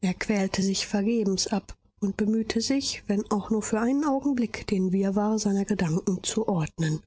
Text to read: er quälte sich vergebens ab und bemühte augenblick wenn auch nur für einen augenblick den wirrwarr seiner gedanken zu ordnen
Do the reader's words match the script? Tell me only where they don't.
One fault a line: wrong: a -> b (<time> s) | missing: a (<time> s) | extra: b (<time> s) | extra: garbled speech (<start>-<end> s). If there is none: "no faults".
wrong: augenblick -> sich (2.6 s)